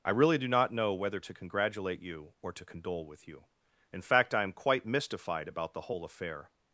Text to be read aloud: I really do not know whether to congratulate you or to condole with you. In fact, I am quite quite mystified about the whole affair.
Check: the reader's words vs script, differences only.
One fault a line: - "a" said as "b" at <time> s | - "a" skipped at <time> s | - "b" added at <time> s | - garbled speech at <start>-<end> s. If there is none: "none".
- "quite" skipped at 4.9 s